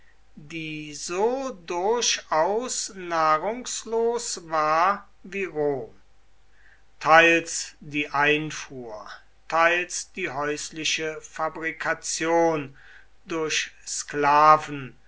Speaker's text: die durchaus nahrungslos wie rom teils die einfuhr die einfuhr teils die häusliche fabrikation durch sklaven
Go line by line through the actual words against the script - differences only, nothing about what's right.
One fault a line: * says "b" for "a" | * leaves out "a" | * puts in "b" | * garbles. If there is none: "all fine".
* puts in "so"
* puts in "war"
* leaves out "die einfuhr"